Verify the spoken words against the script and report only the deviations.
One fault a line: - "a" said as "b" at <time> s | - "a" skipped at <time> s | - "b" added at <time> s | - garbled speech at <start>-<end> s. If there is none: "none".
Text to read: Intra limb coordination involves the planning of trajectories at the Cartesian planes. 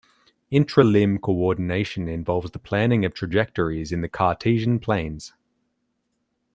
- "at" said as "in" at 3.9 s